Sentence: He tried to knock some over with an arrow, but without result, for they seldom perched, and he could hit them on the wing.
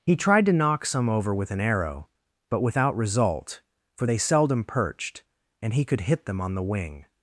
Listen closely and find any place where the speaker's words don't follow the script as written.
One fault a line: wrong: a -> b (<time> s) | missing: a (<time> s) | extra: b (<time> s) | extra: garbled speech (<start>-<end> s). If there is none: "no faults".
no faults